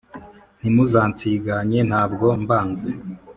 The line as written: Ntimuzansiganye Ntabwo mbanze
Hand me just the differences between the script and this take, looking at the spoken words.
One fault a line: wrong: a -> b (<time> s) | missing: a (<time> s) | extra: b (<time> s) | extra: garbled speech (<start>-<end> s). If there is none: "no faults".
no faults